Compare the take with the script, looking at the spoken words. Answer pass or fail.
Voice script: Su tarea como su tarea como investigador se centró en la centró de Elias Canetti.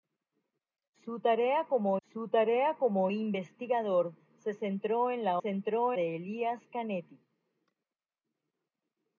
pass